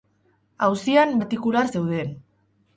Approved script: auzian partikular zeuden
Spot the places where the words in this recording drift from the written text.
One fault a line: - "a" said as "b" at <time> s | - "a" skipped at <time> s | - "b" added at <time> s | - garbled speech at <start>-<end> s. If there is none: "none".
none